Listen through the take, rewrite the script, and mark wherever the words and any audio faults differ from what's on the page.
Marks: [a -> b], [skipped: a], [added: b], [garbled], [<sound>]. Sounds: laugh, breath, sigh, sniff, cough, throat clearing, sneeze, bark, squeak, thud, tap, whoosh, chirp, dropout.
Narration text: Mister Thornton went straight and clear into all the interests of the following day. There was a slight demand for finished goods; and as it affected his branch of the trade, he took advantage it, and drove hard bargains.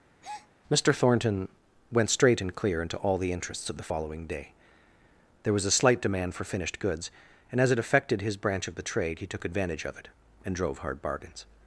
[breath] Mister Thornton went straight and clear into all the interests of the following day. There was a slight demand for finished goods; and as it affected his branch of the trade, he took advantage [added: of] it, and drove hard bargains.